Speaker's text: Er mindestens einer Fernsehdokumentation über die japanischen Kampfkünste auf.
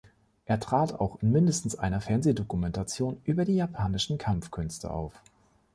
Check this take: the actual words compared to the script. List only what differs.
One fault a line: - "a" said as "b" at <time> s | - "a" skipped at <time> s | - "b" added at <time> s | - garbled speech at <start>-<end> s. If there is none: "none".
- "trat auch in" added at 0.6 s